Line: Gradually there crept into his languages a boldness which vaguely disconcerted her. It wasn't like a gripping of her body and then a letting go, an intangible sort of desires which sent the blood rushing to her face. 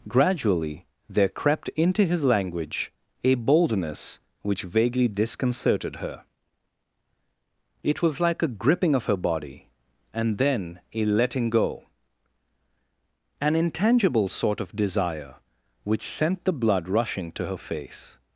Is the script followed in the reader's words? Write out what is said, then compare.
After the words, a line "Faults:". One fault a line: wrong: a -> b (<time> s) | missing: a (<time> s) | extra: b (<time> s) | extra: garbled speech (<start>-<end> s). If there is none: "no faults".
Gradually there crept into his language a boldness which vaguely disconcerted her. It was like a gripping of her body and then a letting go, an intangible sort of desire which sent the blood rushing to her face.
Faults:
wrong: languages -> language (2.2 s)
wrong: wasn't -> was (8.0 s)
wrong: desires -> desire (14.8 s)